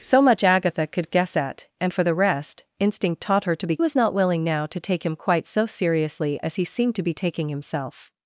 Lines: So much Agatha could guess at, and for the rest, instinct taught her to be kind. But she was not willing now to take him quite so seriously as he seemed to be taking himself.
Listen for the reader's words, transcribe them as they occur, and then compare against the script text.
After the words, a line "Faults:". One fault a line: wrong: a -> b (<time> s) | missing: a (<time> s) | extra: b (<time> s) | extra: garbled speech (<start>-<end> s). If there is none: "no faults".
So much Agatha could guess at, and for the rest, instinct taught her to be was not willing now to take him quite so seriously as he seemed to be taking himself.
Faults:
missing: kind But she (3.8 s)